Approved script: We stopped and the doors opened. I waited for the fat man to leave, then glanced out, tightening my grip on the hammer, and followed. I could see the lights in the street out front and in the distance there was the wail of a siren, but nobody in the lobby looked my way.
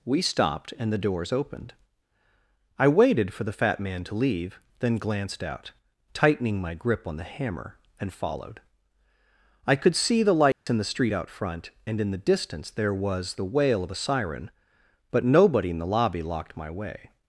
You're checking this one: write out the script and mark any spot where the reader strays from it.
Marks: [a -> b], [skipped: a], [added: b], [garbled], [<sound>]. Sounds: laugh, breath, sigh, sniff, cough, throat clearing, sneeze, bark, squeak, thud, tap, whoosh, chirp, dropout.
We stopped and the doors opened. I waited for the fat man to leave, then glanced out, tightening my grip on the hammer, and followed. I could see the lights [dropout] in the street out front and in the distance there was the wail of a siren, but nobody in the lobby [looked -> locked] my way.